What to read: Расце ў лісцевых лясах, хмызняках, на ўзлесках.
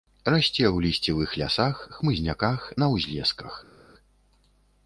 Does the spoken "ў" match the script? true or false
true